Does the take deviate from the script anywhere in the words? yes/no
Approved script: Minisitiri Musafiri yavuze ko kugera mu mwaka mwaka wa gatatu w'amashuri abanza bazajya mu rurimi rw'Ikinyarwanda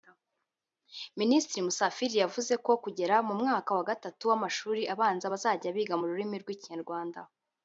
yes